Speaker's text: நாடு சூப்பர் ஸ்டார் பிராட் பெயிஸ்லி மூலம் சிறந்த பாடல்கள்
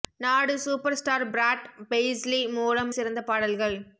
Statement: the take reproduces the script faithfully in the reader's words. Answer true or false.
true